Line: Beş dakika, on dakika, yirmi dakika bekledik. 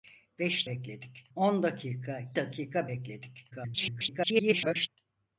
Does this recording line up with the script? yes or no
no